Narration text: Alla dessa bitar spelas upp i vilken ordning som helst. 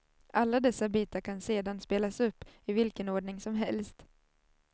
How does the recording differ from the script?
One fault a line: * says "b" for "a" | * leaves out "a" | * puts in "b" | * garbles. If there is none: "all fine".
* puts in "kan sedan"